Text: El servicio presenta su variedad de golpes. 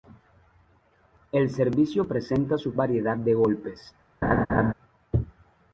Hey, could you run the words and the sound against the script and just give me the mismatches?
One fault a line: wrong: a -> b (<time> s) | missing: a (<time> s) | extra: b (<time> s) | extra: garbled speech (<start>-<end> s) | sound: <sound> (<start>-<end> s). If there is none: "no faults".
sound: laugh (4.2-4.7 s)